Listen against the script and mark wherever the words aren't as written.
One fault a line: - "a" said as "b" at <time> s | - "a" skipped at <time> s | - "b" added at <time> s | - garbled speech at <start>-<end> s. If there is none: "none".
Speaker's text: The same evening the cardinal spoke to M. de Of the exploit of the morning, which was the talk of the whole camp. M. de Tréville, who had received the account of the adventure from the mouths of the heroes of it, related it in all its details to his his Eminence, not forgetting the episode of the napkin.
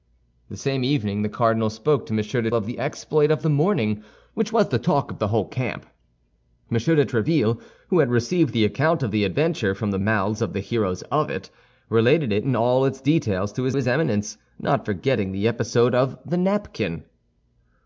none